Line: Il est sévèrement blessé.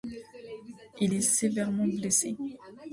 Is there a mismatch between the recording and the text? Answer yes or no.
no